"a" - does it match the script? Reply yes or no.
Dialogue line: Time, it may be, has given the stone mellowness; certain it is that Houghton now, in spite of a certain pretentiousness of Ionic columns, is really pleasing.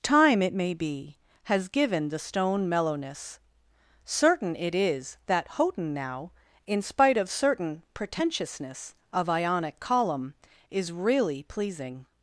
no